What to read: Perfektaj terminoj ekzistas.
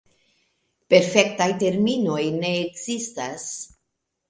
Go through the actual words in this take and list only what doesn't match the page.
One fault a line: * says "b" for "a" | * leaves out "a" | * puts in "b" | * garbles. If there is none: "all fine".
* puts in "ne"